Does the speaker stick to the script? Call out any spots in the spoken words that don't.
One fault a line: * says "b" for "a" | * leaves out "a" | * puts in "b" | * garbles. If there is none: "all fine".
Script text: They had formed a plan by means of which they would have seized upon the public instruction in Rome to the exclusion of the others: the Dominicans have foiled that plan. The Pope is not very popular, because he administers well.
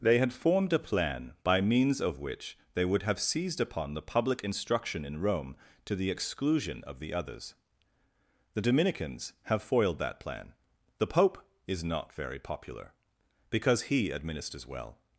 all fine